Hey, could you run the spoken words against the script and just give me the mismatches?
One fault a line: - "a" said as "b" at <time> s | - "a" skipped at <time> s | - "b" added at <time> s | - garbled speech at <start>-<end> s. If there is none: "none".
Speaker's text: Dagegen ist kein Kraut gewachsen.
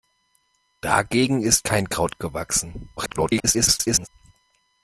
- garbled speech at 3.0-4.1 s